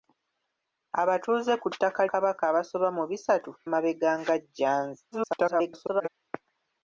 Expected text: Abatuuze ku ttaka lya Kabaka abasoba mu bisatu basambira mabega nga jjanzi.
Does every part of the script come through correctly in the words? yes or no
no